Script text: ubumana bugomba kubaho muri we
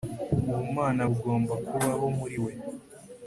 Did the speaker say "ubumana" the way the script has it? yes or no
yes